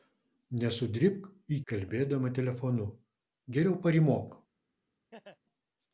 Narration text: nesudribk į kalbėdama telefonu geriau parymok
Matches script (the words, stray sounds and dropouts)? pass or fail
fail